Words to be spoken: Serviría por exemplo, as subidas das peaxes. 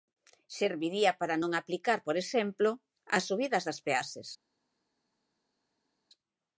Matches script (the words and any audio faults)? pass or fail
fail